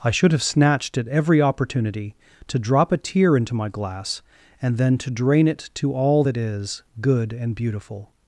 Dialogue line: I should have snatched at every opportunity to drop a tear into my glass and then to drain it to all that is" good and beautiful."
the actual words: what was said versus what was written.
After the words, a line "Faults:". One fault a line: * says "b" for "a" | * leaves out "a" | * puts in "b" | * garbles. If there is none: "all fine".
I should have snatched at every opportunity to drop a tear into my glass and then to drain it to all that is" good and beautiful."
Faults:
all fine